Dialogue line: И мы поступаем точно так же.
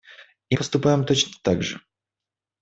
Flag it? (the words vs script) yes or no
yes